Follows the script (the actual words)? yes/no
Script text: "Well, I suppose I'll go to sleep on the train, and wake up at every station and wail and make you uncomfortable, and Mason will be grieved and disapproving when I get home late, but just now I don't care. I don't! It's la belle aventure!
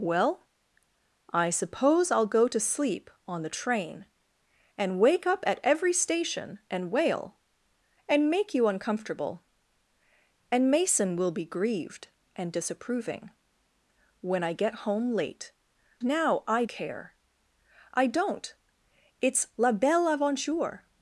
no